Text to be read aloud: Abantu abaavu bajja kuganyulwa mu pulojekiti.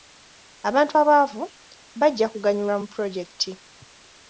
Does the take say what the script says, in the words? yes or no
yes